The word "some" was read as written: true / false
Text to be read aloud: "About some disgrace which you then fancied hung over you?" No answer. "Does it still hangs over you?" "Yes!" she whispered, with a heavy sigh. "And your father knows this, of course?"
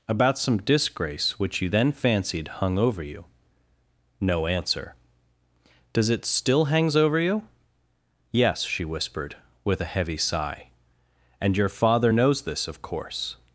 true